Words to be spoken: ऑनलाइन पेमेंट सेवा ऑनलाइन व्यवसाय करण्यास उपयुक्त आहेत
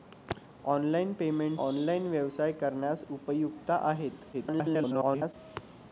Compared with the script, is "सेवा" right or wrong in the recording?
wrong